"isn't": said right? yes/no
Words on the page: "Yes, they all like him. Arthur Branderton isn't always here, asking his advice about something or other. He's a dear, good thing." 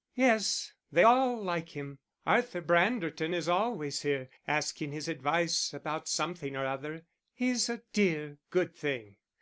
no